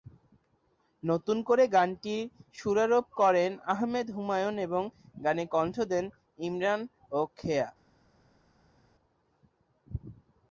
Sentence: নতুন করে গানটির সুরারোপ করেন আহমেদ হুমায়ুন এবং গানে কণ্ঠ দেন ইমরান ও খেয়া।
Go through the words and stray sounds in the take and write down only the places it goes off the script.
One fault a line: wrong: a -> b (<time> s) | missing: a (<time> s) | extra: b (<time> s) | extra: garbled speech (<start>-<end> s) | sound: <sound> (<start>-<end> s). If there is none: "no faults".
no faults